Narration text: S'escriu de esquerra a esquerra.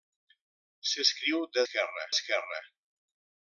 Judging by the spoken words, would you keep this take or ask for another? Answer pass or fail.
pass